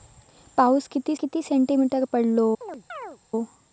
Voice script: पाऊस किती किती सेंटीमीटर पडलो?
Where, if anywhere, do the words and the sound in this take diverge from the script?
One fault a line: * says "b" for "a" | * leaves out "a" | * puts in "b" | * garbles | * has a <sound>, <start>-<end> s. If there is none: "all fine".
* has a chirp, 2.6-3.2 s